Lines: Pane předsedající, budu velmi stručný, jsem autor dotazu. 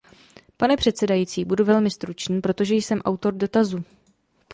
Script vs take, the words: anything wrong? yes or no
yes